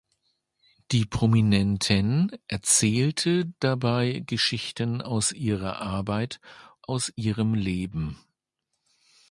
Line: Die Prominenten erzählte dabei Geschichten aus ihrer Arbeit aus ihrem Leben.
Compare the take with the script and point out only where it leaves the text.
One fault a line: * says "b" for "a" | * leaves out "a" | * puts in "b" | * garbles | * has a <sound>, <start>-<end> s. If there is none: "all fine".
all fine